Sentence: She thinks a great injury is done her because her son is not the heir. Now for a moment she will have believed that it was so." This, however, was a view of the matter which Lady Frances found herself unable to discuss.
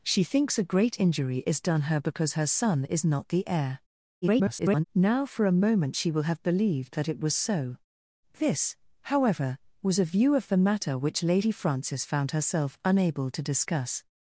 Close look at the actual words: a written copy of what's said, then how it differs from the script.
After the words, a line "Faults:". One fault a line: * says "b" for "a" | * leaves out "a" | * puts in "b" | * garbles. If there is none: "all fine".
She thinks a great injury is done her because her son is not the heir. [garbled] Now for a moment she will have believed that it was so." This, however, was a view of the matter which Lady Frances found herself unable to discuss.
Faults:
* garbles